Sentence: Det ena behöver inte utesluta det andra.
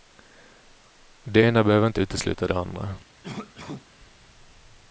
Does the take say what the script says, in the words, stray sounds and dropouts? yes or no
no